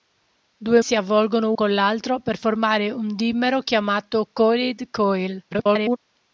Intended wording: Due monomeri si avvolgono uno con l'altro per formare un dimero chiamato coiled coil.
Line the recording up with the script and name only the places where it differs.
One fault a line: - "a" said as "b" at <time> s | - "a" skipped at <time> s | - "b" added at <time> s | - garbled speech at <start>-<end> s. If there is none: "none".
- "monomeri" skipped at 0.8 s
- "uno" skipped at 1.5 s
- garbled speech at 5.5-6.0 s